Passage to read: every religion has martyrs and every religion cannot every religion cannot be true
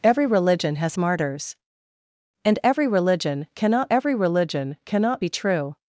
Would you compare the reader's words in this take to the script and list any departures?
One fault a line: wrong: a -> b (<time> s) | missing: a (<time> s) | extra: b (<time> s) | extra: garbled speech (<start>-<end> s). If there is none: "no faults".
no faults